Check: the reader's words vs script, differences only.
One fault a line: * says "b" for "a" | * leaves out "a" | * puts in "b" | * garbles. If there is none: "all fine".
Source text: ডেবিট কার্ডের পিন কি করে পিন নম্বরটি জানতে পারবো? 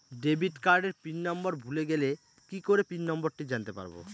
* puts in "নম্বর ভুলে গেলে"